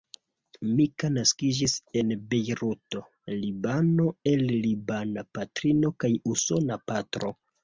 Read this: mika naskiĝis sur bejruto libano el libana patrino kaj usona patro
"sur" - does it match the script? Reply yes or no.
no